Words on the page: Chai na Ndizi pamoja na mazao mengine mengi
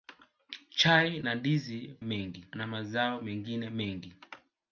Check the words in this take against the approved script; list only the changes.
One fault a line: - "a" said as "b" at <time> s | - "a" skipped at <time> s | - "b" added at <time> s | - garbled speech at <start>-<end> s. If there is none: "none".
- "pamoja" said as "mengi" at 2.0 s